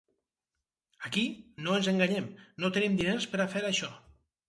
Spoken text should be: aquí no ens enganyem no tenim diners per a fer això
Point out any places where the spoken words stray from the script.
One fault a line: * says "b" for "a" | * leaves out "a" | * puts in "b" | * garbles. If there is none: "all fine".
all fine